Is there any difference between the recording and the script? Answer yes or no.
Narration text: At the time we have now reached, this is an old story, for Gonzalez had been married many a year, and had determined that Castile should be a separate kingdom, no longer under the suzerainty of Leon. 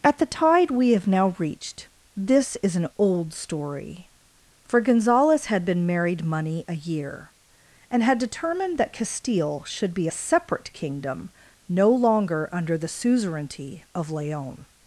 yes